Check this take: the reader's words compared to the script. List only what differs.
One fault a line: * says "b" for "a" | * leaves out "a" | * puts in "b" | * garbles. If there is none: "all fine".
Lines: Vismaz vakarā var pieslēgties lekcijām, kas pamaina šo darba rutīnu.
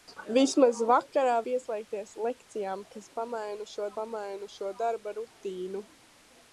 * leaves out "var"
* puts in "pamaina šo"